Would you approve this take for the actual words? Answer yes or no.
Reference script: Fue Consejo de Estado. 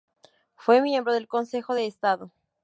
no